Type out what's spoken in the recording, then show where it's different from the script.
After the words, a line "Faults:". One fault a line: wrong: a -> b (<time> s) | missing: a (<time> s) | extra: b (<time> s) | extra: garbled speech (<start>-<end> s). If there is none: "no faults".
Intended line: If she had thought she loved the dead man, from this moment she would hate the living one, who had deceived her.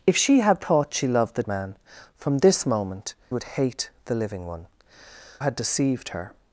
If she had thought she loved the man, from this moment would hate the living one, had deceived her.
Faults:
missing: dead (1.4 s)
missing: she (3.1 s)
missing: who (4.7 s)